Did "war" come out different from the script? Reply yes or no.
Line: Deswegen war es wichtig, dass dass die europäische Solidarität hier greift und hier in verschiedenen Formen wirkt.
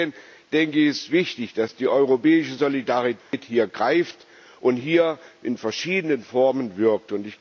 yes